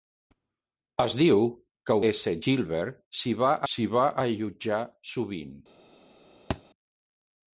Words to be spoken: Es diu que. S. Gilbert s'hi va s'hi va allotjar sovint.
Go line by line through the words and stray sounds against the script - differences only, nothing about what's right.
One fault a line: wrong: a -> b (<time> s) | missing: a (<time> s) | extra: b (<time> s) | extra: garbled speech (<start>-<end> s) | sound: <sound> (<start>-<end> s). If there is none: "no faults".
sound: thud (6.5-6.6 s)